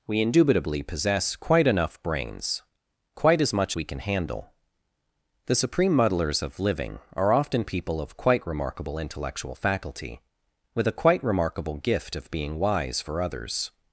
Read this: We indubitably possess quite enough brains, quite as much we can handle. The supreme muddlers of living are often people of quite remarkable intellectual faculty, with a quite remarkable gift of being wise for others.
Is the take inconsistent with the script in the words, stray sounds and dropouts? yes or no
no